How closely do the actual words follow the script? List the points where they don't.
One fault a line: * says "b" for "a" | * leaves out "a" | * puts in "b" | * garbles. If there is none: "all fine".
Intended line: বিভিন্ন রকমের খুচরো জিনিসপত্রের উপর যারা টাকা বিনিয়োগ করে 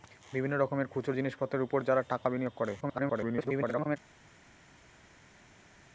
* garbles